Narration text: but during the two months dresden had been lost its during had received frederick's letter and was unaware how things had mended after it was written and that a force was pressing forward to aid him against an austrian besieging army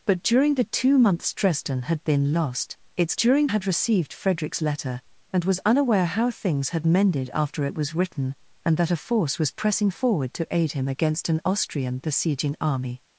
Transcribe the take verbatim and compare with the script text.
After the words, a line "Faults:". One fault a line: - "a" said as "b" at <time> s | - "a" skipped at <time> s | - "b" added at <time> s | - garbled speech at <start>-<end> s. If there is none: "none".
but during the two months dresden had been lost its during had received frederick's letter and was unaware how things had mended after it was written and that a force was pressing forward to aid him against an austrian besieging army
Faults:
none